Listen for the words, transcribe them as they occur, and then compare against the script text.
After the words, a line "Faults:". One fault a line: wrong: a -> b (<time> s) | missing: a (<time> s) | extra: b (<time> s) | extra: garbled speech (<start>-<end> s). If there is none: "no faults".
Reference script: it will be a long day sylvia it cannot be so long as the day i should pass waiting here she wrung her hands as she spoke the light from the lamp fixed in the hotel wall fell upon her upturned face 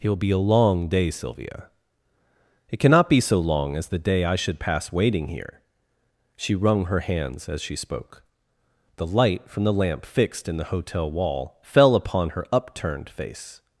it will be a long day sylvia it cannot be so long as the day i should pass waiting here she wrung her hands as she spoke the light from the lamp fixed in the hotel wall fell upon her upturned face
Faults:
no faults